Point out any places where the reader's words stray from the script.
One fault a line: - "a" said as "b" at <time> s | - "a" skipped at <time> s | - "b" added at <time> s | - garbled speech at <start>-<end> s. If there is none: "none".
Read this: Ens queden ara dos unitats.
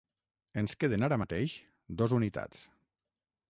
- "mateix" added at 1.2 s